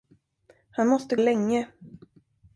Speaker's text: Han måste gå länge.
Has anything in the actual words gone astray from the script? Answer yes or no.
yes